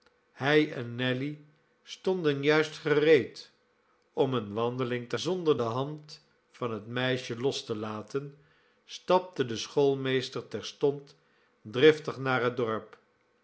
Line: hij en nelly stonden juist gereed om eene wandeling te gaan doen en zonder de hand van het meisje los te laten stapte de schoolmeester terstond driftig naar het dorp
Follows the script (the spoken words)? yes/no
no